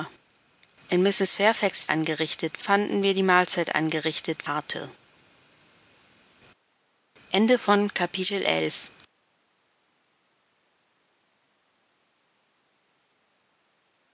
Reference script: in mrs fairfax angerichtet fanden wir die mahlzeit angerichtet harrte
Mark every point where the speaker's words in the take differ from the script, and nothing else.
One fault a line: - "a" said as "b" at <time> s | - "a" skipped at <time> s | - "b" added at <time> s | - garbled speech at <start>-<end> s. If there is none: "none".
none